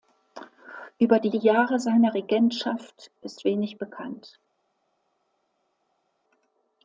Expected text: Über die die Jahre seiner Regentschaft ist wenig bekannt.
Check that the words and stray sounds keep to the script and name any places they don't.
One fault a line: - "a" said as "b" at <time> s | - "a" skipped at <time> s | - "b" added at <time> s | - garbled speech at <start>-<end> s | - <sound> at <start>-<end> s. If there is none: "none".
none